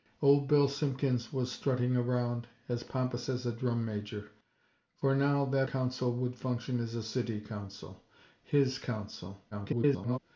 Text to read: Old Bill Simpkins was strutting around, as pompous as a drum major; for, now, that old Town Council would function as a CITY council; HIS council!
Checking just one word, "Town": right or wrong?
wrong